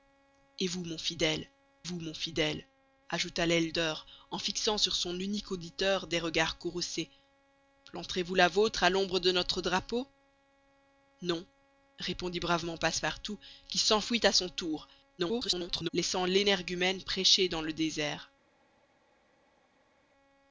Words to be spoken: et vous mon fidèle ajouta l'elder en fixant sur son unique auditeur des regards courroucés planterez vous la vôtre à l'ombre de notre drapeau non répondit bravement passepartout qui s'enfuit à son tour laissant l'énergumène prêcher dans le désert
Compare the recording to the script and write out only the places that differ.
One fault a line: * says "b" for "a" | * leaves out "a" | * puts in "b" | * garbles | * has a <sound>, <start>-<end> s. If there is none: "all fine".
* puts in "vous mon fidèle"
* garbles